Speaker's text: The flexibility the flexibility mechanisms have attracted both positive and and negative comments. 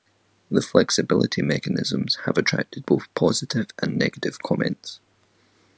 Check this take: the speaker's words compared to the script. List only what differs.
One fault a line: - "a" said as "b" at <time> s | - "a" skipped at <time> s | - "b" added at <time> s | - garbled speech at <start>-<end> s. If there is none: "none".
- "the flexibility" skipped at 1.4 s
- "and" skipped at 4.0 s